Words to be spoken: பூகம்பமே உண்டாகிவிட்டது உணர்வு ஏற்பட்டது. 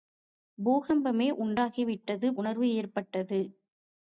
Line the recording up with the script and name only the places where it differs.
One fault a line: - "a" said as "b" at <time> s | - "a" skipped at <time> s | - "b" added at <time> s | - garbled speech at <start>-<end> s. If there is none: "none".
none